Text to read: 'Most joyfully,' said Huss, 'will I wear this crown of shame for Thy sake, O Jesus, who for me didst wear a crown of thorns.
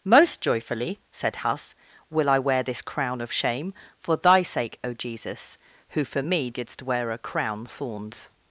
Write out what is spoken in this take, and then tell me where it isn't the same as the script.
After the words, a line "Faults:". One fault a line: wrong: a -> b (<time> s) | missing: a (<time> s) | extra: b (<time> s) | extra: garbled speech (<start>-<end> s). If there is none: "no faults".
'Most joyfully,' said Huss, 'will I wear this crown of shame for Thy sake, O Jesus, who for me didst wear a crown thorns.
Faults:
missing: of (7.6 s)